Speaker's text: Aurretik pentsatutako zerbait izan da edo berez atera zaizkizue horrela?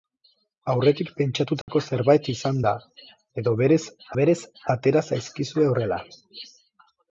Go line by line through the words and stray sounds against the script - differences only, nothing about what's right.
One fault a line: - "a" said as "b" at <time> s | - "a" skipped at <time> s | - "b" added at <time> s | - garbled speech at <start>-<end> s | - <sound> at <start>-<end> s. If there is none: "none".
- dropout at 1.6-1.7 s
- "berez" added at 4.2 s